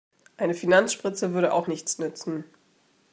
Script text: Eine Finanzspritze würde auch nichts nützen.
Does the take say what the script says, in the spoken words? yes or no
yes